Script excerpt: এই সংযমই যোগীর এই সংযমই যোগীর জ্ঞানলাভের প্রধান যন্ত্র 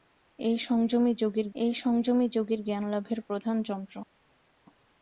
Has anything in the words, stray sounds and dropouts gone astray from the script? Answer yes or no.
no